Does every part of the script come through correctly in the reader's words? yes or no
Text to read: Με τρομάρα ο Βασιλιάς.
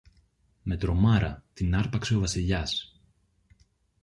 no